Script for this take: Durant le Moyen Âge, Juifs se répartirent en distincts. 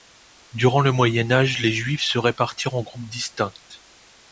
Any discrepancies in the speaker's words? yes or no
yes